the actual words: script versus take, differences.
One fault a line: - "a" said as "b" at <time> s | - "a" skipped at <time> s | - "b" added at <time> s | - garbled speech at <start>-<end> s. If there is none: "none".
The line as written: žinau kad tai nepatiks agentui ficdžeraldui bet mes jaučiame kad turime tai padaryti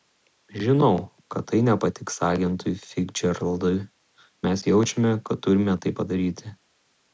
- "bet" skipped at 3.8 s